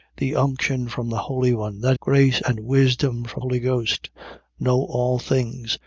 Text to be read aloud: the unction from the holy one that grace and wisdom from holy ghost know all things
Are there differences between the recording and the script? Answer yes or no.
no